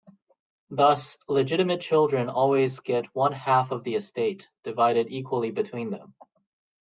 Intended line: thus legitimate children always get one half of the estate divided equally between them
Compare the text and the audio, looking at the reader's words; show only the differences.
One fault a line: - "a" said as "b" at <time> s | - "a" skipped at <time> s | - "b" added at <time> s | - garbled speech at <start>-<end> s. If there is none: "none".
none